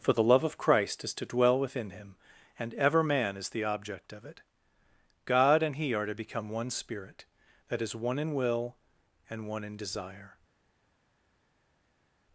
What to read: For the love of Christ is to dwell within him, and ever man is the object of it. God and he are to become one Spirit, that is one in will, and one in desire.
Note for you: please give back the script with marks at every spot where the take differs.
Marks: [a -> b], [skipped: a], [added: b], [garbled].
For the love of Christ is to dwell within him, and ever man is the object of it. God and he are to become one Spirit, that is one in will, and one in desire.